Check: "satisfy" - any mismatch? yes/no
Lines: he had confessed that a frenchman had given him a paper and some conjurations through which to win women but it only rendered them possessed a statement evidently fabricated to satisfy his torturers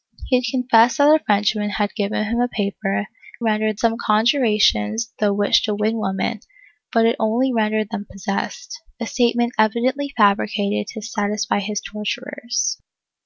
no